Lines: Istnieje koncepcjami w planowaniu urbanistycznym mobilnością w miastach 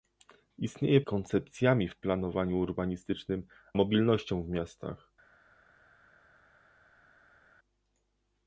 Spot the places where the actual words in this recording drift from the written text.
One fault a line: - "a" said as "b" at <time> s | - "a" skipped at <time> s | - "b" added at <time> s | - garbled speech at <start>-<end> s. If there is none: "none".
none